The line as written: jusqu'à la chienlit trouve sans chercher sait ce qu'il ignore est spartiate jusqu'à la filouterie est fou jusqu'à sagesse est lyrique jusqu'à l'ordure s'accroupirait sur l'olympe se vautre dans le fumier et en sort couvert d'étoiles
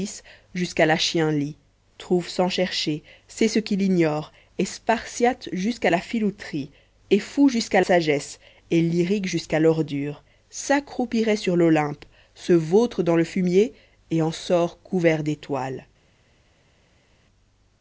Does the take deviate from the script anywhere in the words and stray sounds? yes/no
no